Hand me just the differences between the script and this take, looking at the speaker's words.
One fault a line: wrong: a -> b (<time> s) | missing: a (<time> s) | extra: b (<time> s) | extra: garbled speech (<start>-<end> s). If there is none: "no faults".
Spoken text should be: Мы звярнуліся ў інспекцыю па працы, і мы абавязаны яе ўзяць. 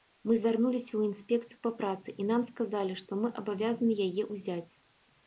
extra: нам сказалі што (2.3 s)